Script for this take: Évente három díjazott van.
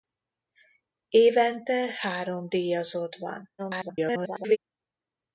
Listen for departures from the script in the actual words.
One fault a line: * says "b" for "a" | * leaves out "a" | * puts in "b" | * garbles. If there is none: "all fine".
* garbles